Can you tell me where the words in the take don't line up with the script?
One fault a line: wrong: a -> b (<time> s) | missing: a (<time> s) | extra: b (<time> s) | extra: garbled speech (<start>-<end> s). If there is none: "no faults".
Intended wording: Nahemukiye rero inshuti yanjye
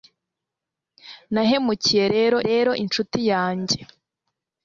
extra: rero (2.5 s)